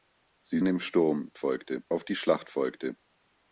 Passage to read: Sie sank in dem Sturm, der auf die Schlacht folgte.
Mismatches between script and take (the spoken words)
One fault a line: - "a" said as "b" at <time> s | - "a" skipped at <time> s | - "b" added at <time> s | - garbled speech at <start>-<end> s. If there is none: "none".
- "sank in" skipped at 0.6 s
- "der" said as "folgte" at 1.4 s